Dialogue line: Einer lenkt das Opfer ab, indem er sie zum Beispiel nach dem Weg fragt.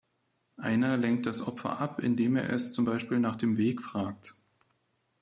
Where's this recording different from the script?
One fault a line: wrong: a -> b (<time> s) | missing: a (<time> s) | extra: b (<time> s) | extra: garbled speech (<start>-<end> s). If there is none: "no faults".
wrong: sie -> es (2.5 s)